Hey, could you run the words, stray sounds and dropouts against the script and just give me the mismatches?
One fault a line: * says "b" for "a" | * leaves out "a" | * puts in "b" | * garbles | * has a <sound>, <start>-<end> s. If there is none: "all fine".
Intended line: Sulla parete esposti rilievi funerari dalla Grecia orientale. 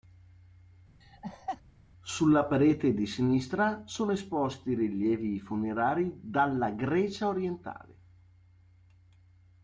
* has a laugh, 1.0-1.6 s
* puts in "di sinistra sono"